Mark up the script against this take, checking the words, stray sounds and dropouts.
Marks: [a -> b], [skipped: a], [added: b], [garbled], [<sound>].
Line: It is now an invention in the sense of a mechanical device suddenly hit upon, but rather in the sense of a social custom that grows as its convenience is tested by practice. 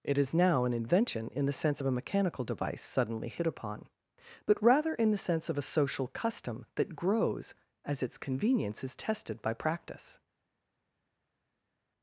It is now an invention in the sense of a mechanical device suddenly hit upon, but rather in the sense of a social custom that grows as its convenience is tested by practice.